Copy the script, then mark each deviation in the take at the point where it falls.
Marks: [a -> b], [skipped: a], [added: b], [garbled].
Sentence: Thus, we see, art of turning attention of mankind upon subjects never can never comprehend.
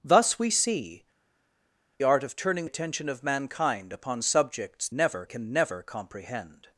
Thus, we see, art of turning attention of mankind upon subjects never can never comprehend.